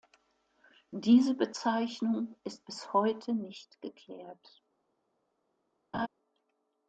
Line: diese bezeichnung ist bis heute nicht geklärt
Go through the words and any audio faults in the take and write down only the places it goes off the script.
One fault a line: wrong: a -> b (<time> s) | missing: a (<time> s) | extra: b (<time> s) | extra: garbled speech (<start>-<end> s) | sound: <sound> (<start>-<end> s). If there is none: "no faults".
sound: laugh (5.9-6.1 s)